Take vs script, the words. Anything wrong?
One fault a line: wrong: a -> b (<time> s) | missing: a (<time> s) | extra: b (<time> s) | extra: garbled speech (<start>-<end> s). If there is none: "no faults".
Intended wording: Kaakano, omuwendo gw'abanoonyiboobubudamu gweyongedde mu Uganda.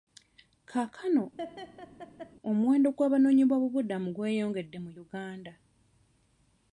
no faults